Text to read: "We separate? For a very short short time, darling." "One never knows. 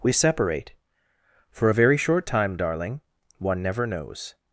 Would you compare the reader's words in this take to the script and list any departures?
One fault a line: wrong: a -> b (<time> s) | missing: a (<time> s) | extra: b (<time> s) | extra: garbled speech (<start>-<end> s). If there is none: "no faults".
missing: short (2.2 s)